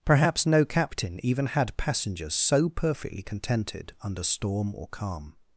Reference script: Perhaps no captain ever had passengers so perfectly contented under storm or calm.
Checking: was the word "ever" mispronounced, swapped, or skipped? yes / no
yes